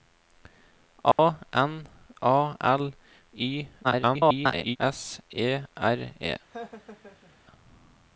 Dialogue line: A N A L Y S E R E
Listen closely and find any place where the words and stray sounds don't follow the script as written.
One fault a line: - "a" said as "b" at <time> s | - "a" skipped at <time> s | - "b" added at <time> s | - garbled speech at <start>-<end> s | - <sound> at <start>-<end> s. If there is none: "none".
- dropout at 1.1-1.2 s
- garbled speech at 3.8-4.8 s
- laugh at 6.5-7.4 s